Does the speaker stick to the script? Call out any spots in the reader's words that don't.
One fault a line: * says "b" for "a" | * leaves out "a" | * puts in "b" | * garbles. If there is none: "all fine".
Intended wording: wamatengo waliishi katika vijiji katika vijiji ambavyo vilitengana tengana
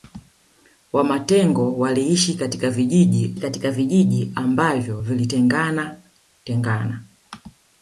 all fine